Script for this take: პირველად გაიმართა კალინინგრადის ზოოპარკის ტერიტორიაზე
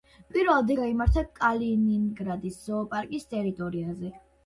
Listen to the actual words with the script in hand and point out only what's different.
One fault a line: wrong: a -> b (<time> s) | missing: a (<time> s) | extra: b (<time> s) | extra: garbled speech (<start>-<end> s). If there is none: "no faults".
no faults